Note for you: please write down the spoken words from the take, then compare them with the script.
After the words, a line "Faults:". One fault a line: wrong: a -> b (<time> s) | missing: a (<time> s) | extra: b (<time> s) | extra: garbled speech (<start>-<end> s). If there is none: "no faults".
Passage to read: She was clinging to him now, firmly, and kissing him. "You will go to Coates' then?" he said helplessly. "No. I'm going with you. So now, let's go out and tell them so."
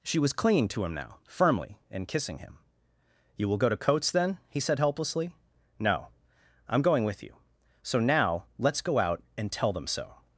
She was clinging to him now, firmly, and kissing him. "You will go to Coates' then?" he said helplessly. "No. I'm going with you. So now, let's go out and tell them so."
Faults:
no faults